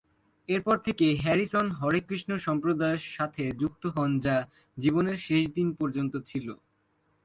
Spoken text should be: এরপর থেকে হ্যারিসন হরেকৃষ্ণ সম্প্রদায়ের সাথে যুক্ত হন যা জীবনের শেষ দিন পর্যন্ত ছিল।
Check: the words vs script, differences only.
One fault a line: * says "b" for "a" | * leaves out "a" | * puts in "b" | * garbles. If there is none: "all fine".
all fine